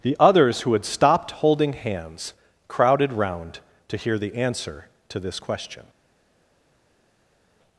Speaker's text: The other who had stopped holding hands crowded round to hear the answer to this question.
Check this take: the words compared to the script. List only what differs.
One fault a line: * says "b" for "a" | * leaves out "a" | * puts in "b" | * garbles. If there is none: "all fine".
* says "others" for "other"